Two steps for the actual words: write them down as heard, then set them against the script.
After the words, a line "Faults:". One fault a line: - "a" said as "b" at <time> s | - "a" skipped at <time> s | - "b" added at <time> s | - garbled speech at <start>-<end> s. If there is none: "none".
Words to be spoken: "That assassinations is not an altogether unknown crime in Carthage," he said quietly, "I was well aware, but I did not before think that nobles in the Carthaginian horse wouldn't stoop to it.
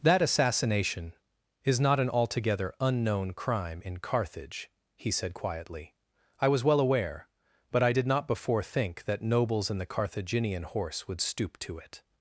"That assassination is not an altogether unknown crime in Carthage," he said quietly, "I was well aware, but I did not before think that nobles in the Carthaginian horse would stoop to it.
Faults:
- "assassinations" said as "assassination" at 0.2 s
- "wouldn't" said as "would" at 11.1 s